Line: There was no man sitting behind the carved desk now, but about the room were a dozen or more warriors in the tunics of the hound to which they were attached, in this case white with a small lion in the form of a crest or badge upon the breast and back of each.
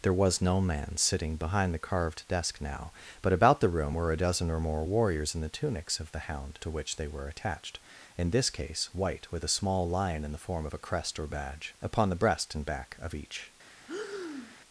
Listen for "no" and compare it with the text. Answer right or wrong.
right